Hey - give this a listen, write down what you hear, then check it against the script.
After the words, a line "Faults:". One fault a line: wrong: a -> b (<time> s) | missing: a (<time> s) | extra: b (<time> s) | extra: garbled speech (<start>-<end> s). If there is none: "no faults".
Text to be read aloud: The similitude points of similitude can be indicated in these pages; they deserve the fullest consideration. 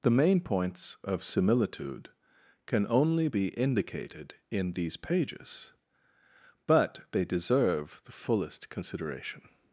The main points of similitude can only be indicated in these pages; but they deserve the fullest consideration.
Faults:
wrong: similitude -> main (0.1 s)
extra: only (2.9 s)
extra: but (6.7 s)